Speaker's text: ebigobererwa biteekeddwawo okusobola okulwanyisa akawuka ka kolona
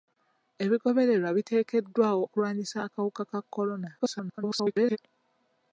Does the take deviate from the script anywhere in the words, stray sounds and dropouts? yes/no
yes